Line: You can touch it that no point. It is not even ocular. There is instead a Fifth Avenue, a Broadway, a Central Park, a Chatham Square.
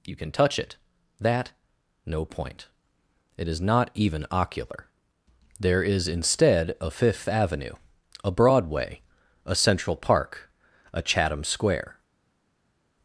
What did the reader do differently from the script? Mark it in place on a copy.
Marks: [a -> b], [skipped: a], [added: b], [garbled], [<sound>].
You can touch it that no point. It is not even ocular. There is instead a Fifth Avenue, a Broadway, a Central Park, a Chatham Square.